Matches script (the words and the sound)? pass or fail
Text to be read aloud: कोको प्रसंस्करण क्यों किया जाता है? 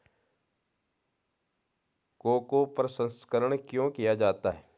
pass